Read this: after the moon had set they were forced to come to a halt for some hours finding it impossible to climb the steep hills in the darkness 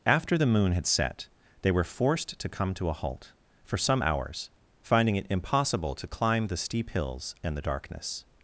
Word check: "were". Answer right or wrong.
right